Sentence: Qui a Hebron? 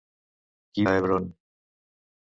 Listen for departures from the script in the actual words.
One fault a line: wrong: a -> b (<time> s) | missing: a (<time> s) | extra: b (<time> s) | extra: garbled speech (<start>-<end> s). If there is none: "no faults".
no faults